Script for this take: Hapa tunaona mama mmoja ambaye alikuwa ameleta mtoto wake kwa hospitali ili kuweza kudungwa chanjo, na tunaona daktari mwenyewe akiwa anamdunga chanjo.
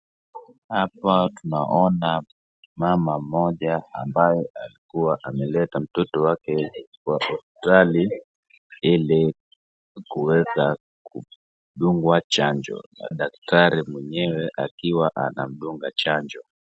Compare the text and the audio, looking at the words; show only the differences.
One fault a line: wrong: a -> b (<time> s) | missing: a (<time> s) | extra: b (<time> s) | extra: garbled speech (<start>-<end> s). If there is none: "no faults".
missing: tunaona (13.1 s)